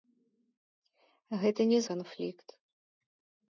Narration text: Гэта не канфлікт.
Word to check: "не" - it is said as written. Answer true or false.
true